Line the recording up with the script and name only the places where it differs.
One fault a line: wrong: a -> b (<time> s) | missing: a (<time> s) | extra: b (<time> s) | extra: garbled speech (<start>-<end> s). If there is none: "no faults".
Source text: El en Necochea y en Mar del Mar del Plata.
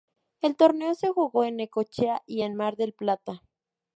extra: torneo se jugó (0.6 s)
missing: Mar del (2.9 s)